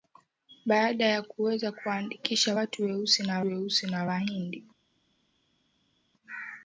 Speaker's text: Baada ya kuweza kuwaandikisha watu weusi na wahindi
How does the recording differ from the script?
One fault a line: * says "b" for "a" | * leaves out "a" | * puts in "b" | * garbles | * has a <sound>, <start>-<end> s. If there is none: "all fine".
* puts in "weusi na"